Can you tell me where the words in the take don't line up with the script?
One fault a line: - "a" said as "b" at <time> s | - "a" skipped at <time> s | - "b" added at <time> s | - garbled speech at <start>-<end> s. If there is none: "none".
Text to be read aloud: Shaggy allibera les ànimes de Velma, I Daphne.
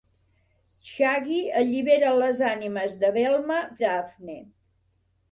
none